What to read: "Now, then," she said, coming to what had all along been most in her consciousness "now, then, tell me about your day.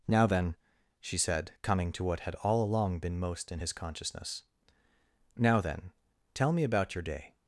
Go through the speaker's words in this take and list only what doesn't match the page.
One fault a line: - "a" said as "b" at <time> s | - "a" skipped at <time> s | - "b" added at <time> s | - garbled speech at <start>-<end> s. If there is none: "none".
- "her" said as "his" at 3.6 s